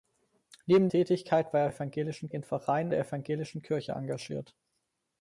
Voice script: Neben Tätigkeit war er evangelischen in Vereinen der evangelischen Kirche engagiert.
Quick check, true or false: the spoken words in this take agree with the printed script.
true